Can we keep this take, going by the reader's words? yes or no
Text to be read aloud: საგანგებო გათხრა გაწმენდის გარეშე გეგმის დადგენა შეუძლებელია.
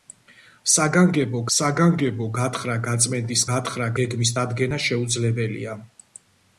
no